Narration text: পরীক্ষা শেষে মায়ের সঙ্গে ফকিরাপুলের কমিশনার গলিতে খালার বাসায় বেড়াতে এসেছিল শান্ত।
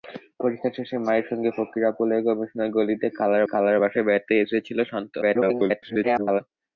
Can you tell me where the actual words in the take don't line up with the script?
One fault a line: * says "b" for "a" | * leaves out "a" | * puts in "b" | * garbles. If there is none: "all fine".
* puts in "খালার"
* garbles